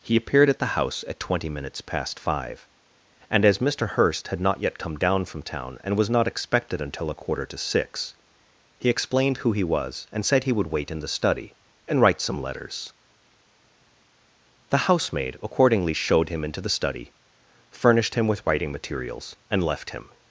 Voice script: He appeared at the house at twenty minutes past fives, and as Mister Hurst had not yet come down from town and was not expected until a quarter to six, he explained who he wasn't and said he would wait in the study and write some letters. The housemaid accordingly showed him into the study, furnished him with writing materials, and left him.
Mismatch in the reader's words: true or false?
true